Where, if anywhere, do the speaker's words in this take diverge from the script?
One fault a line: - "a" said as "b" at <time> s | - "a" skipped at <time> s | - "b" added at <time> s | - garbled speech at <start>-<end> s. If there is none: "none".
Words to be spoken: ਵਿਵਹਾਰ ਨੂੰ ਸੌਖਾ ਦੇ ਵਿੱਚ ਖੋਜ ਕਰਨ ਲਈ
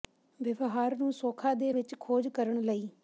none